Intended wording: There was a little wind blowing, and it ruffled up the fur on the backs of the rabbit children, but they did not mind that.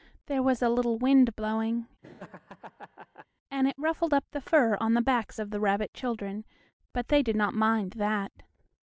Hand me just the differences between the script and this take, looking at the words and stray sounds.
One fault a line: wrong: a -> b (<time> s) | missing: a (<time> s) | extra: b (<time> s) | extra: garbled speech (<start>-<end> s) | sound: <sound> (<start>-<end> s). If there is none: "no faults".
sound: laugh (2.0-3.3 s)